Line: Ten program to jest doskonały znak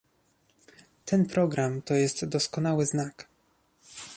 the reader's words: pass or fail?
pass